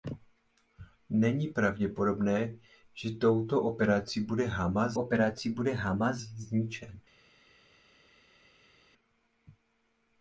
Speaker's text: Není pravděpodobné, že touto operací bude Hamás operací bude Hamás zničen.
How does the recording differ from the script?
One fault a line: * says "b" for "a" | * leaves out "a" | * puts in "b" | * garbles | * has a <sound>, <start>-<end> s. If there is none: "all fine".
all fine